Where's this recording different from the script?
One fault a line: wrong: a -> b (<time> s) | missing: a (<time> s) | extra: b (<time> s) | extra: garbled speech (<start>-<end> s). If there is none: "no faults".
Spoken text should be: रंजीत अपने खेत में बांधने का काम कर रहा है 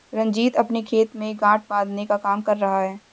extra: गांठ (1.4 s)